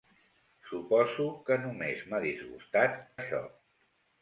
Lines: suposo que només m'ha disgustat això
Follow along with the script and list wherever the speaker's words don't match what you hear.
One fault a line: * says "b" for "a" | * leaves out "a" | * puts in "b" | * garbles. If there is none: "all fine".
all fine